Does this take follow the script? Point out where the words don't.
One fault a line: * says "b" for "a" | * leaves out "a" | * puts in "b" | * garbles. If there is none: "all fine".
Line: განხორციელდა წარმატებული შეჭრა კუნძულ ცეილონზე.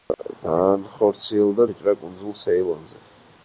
* leaves out "წარმატებული"